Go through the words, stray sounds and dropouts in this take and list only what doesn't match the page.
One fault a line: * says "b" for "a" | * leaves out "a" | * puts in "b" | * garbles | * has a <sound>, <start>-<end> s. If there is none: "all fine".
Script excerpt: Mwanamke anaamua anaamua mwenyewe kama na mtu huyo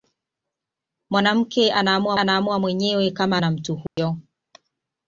* has a dropout, 3.9-4.0 s